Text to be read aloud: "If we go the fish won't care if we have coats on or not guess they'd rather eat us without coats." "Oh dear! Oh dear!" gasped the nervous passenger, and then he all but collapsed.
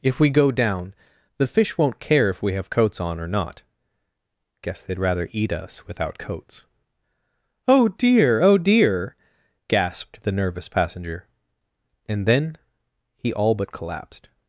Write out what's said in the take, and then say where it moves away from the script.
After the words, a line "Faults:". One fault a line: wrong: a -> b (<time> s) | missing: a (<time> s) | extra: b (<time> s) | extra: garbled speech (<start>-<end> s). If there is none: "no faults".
"If we go down the fish won't care if we have coats on or not guess they'd rather eat us without coats." "Oh dear! Oh dear!" gasped the nervous passenger, and then he all but collapsed.
Faults:
extra: down (0.5 s)